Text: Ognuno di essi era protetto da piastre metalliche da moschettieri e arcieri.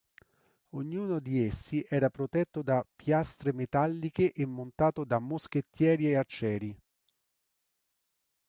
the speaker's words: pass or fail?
fail